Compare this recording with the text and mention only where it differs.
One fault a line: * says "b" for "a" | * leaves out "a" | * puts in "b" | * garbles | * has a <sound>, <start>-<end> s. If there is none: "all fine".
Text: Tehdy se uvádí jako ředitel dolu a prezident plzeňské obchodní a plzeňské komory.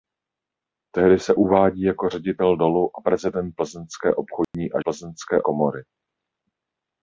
* has a dropout, 4.4-4.5 s